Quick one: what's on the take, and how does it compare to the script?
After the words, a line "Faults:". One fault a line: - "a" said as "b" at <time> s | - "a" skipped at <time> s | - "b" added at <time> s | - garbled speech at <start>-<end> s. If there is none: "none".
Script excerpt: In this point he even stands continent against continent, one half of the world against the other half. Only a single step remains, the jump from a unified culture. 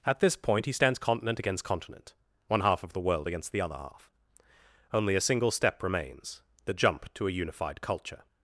At this point he stands continent against continent, one half of the world against the other half. Only a single step remains, the jump to a unified culture.
Faults:
- "In" said as "At" at 0.1 s
- "even" skipped at 0.7 s
- "from" said as "to" at 7.2 s